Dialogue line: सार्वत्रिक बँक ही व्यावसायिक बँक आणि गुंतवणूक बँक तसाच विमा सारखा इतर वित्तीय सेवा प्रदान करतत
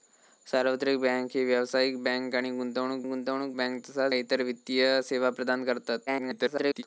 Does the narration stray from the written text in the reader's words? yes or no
yes